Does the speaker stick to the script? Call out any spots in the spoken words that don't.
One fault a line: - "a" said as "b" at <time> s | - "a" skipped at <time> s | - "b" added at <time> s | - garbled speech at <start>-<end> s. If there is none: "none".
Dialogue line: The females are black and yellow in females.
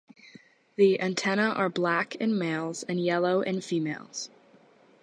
- "females" said as "antennae" at 1.0 s
- "in males" added at 2.1 s